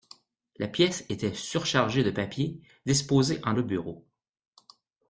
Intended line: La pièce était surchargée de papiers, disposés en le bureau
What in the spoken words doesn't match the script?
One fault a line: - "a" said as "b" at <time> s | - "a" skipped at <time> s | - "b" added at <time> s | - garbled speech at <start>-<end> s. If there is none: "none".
none